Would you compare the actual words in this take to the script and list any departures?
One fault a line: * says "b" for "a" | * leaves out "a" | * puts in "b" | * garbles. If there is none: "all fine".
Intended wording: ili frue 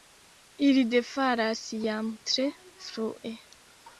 * puts in "defalas jam tre"